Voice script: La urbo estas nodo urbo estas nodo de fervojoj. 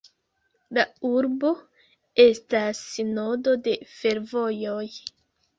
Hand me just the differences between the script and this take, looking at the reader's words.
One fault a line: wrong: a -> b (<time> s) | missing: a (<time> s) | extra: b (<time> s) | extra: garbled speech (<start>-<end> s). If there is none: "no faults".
missing: urbo estas nodo (3.6 s)